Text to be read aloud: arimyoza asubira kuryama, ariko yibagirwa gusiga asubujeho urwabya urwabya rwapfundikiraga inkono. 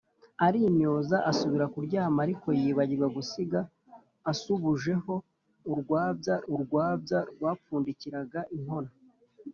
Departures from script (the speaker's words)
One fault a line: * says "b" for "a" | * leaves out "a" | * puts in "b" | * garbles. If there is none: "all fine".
all fine